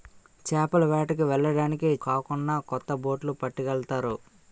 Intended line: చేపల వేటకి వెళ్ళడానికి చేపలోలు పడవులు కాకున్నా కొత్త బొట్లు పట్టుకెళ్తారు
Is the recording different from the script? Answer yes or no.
yes